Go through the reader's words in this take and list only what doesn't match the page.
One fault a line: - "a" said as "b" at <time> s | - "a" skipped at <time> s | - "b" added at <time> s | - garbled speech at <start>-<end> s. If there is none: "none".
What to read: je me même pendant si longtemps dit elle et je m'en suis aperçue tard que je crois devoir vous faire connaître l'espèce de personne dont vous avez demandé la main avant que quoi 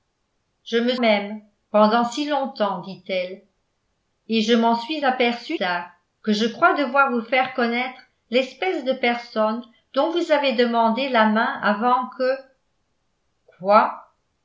none